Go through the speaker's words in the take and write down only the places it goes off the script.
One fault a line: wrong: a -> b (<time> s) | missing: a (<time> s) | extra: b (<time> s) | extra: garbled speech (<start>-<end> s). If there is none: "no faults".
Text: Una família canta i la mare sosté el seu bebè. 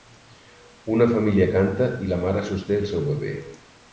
no faults